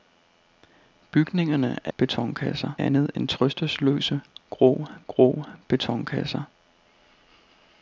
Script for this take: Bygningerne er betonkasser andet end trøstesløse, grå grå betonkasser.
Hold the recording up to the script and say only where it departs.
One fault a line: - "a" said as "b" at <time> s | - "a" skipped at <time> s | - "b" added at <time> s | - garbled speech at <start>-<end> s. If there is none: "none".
none